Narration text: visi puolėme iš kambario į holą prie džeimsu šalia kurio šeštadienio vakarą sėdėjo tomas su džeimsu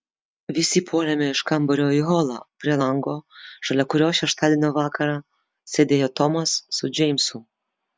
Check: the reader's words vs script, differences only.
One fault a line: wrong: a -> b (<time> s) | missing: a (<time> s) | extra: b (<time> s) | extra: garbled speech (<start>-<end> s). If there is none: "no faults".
wrong: džeimsu -> lango (2.8 s)